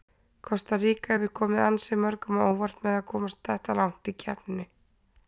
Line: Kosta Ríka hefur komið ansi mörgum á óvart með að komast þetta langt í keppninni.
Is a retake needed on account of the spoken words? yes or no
no